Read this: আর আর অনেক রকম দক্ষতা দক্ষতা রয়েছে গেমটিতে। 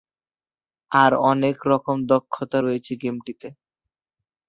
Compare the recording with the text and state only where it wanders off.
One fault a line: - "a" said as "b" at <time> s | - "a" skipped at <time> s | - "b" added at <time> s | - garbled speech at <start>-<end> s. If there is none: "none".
- "আর" skipped at 1.1 s
- "দক্ষতা" skipped at 2.6 s